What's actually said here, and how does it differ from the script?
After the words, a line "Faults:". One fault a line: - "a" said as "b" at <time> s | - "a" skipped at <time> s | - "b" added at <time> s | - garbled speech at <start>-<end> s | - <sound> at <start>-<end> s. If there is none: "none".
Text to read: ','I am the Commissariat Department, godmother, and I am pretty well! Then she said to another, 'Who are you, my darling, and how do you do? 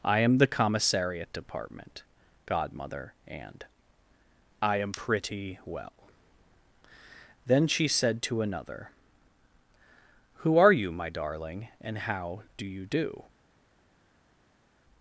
','I am the Commissariat Department, godmother, and I am pretty well! Then she said to another, 'Who are you, my darling, and how do you do?
Faults:
none